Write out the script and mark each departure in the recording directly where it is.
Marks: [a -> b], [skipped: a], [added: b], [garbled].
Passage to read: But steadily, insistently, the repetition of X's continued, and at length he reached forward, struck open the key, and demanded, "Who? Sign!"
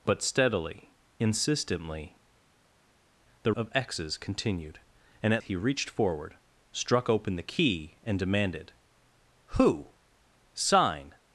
But steadily, insistently, the [skipped: repetition] of X's continued, and at [skipped: length] he reached forward, struck open the key, and demanded, "Who? Sign!"